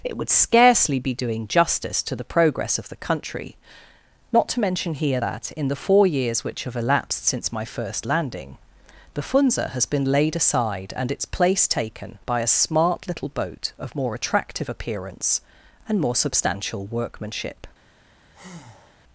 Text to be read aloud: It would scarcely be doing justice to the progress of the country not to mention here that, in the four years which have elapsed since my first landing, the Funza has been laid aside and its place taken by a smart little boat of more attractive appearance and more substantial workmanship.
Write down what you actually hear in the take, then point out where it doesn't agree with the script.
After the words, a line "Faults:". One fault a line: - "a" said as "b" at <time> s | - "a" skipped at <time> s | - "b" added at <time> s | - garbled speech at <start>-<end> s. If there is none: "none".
It would scarcely be doing justice to the progress of the country not to mention here that, in the four years which have elapsed since my first landing, the Funza has been laid aside and its place taken by a smart little boat of more attractive appearance and more substantial workmanship.
Faults:
none